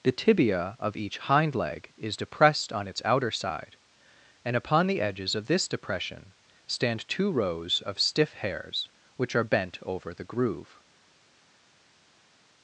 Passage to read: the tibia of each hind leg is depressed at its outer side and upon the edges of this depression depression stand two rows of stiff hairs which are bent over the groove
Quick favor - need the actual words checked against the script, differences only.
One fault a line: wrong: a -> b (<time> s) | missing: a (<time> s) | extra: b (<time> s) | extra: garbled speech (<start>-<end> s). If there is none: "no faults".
wrong: at -> on (2.7 s)
missing: depression (6.3 s)